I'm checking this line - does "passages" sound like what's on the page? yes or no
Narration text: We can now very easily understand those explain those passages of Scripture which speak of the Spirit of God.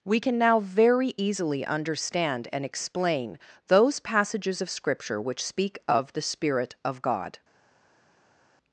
yes